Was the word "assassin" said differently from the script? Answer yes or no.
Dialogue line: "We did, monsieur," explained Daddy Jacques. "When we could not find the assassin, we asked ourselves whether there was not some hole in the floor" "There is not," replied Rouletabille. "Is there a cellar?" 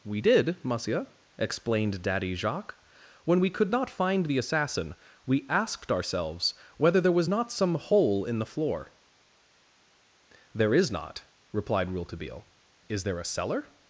no